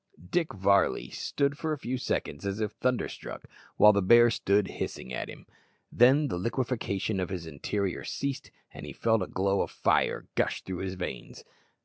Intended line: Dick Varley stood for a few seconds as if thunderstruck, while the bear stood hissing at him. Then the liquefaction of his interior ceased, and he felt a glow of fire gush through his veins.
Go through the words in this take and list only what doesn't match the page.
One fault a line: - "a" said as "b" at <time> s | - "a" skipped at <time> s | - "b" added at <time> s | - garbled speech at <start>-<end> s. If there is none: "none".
none